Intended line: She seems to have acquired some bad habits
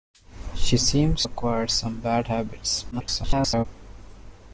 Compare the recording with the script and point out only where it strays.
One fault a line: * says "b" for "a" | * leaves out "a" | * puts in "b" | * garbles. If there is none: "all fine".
* leaves out "to have"
* garbles